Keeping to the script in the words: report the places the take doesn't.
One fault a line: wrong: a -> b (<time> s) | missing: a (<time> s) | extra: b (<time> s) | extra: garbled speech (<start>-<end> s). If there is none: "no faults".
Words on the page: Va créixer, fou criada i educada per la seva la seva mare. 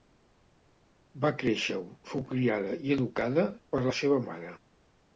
missing: la seva (4.2 s)